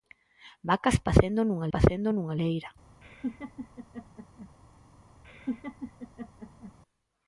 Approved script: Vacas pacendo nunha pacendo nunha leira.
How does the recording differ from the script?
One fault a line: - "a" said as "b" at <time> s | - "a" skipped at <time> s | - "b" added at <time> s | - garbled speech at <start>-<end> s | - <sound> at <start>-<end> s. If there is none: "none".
- laugh at 3.0-4.5 s
- laugh at 5.2-6.7 s